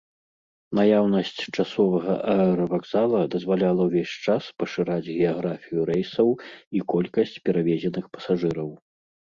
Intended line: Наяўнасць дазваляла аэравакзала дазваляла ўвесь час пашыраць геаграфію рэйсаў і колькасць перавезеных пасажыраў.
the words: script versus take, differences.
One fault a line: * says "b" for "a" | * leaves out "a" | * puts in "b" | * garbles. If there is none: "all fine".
* says "часовага" for "дазваляла"